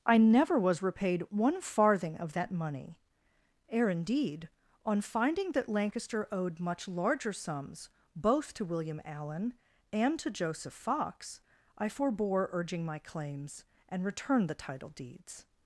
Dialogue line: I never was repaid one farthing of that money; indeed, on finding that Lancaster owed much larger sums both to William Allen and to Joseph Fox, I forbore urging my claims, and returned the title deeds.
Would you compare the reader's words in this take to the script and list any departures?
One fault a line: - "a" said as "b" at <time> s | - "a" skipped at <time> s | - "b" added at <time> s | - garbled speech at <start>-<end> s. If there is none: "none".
- "ere" added at 3.7 s